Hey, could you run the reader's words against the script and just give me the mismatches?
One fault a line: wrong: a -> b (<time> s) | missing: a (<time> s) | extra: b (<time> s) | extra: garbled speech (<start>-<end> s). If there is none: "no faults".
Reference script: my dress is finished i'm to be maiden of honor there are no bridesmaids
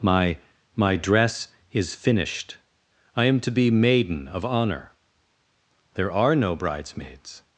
extra: my (0.8 s)